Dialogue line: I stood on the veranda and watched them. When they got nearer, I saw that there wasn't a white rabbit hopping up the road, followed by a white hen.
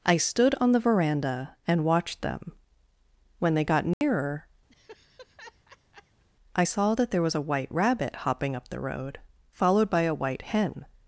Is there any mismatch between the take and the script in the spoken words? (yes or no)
yes